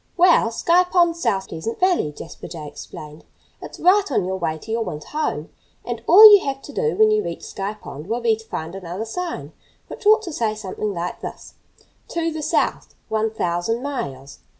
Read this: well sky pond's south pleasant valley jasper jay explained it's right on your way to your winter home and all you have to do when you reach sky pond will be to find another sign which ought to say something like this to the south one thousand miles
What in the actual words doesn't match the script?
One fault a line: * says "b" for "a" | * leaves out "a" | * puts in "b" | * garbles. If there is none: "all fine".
all fine